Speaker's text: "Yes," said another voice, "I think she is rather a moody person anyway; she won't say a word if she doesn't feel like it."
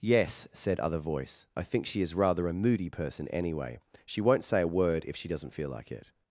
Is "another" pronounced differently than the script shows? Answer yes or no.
yes